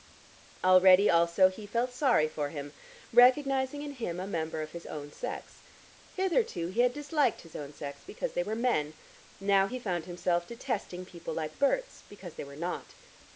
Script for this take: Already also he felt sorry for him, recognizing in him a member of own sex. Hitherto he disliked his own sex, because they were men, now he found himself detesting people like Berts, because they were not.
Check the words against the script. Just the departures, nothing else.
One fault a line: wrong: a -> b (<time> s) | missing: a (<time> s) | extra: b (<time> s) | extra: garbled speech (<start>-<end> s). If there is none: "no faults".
extra: his (4.7 s)
extra: had (6.8 s)